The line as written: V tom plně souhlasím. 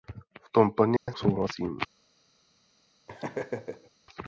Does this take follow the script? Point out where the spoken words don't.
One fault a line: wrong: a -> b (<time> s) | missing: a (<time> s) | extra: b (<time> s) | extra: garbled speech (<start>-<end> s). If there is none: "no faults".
no faults